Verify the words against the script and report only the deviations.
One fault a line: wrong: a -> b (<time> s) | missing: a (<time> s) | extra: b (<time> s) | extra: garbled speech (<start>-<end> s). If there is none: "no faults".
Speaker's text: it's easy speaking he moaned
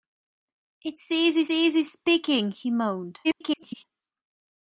extra: easy (1.5 s)
extra: garbled speech (3.2-3.8 s)